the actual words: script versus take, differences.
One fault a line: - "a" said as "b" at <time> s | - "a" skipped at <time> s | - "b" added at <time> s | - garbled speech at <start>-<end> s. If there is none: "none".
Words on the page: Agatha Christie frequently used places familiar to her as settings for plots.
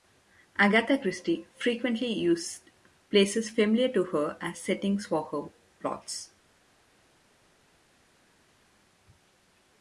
- "her" added at 5.2 s